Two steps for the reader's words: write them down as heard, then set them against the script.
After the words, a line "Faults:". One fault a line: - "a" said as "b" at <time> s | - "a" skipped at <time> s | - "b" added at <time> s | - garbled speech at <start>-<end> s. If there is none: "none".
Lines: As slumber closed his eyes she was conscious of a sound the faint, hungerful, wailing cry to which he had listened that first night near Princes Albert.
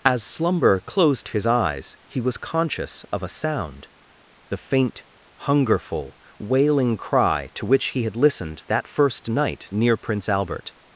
As slumber closed his eyes he was conscious of a sound the faint, hungerful, wailing cry to which he had listened that first night near Prince Albert.
Faults:
- "she" said as "he" at 2.1 s
- "Princes" said as "Prince" at 9.9 s